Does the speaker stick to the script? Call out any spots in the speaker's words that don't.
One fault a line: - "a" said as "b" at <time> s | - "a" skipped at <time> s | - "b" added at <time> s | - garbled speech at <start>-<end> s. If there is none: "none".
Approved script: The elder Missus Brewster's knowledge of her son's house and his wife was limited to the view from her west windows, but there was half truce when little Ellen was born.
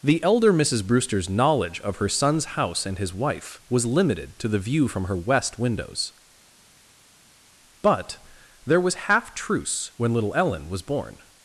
none